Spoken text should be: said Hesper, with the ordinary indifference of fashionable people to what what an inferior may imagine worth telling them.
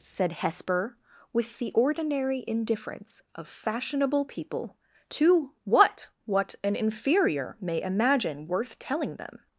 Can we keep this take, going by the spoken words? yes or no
yes